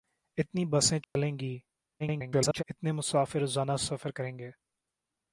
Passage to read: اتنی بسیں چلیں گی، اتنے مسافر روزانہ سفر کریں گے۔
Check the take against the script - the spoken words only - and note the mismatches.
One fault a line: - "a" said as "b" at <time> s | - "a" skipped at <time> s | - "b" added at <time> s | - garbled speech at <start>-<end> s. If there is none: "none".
- garbled speech at 2.0-2.6 s